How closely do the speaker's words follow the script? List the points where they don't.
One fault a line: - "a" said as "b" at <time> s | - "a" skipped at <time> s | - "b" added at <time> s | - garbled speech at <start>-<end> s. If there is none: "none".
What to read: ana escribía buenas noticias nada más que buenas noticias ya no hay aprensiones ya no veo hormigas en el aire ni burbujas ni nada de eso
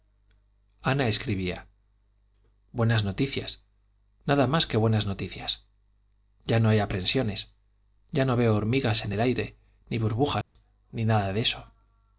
none